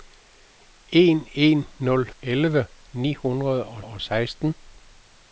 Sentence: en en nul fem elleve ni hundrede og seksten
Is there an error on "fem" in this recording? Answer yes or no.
yes